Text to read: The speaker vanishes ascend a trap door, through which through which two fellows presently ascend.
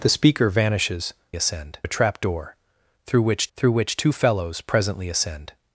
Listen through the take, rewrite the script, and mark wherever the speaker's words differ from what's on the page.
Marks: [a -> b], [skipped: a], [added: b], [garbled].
The speaker vanishes ascend a trap door, through which through which two fellows presently ascend.